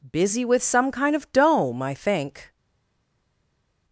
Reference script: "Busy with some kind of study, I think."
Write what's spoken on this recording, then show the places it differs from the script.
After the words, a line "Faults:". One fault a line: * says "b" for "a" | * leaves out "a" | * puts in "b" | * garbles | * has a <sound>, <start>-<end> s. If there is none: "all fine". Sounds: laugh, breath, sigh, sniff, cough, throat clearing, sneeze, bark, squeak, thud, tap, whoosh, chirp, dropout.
"Busy with some kind of dome, I think."
Faults:
* says "dome" for "study"